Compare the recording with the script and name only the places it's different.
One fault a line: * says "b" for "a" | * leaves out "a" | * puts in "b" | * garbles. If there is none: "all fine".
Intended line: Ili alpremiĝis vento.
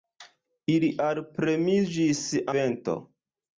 all fine